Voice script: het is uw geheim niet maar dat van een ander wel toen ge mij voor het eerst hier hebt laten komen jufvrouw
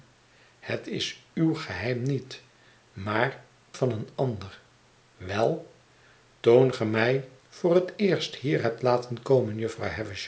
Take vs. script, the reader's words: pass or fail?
fail